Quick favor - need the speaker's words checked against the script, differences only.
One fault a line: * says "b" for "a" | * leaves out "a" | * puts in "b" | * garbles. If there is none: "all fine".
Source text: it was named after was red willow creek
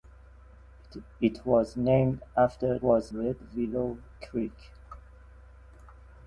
all fine